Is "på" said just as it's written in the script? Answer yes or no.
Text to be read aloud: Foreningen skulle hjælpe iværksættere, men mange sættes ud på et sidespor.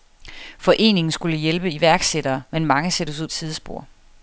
no